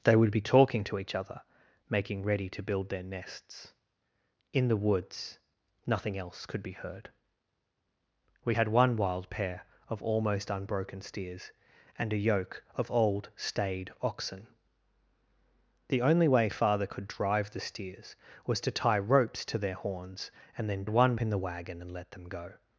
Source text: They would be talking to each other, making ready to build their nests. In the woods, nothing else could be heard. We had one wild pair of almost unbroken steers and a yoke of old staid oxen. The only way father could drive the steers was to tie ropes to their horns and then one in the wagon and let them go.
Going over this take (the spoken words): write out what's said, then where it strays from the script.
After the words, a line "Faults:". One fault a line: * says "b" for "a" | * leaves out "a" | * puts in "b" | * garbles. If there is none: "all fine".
They would be talking to each other, making ready to build their nests. In the woods, nothing else could be heard. We had one wild pair of almost unbroken steers and a yoke of old staid oxen. The only way father could drive the steers was to tie ropes to their horns and then one in the wagon and let them go.
Faults:
all fine